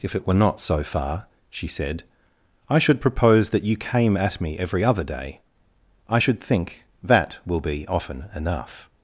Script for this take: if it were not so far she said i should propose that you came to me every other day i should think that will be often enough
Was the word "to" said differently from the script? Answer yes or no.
yes